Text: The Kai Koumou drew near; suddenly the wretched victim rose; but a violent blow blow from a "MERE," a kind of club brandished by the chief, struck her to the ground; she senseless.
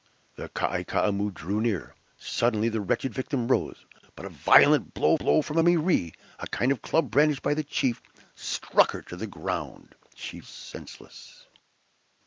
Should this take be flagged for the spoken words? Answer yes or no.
no